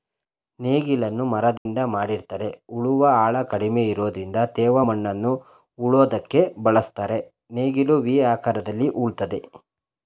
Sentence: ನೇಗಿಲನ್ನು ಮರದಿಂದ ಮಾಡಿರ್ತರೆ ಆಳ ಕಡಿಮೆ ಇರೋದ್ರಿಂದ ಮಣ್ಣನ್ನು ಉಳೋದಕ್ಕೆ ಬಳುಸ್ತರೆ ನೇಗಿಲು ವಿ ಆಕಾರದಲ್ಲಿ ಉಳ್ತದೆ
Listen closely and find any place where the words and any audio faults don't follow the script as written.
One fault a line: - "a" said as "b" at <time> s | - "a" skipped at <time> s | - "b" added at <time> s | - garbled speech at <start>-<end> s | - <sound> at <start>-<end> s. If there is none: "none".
- dropout at 1.6-1.7 s
- "ಉಳುವ" added at 2.8 s
- "ತೇವ" added at 4.5 s